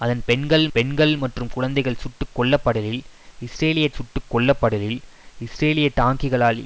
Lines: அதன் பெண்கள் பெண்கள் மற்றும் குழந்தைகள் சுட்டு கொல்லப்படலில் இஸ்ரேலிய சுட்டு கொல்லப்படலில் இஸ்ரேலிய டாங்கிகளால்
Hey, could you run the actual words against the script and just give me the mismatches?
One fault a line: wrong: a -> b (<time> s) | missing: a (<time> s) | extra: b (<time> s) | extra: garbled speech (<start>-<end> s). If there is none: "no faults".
no faults